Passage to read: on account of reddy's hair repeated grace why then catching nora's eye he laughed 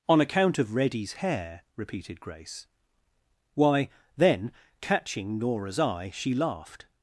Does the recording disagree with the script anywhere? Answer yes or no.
yes